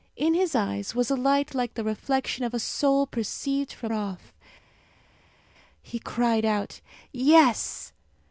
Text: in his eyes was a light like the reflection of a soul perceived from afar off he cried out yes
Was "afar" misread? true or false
true